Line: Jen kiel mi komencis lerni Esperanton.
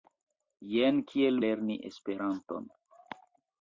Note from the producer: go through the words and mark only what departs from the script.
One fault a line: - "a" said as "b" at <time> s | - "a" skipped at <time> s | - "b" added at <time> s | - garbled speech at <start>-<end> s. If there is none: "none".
- "mi komencis" skipped at 1.4 s